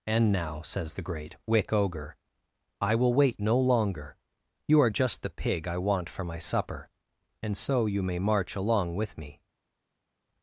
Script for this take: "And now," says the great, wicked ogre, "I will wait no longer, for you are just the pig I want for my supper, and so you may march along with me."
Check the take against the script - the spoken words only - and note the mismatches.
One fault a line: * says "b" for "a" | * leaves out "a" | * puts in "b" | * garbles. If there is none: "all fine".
* says "wick" for "wicked"
* leaves out "for"